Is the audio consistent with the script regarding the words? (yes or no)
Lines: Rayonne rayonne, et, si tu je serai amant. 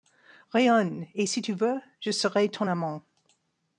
no